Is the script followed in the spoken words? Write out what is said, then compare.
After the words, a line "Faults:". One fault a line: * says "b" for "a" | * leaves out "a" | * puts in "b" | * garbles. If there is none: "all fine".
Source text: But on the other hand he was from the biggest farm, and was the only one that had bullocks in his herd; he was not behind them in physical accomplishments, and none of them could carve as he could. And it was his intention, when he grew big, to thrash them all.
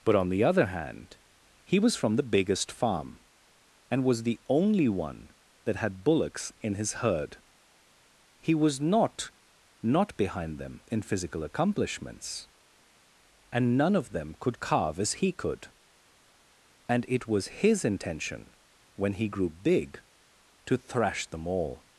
But on the other hand he was from the biggest farm, and was the only one that had bullocks in his herd; he was not not behind them in physical accomplishments, and none of them could carve as he could. And it was his intention, when he grew big, to thrash them all.
Faults:
* puts in "not"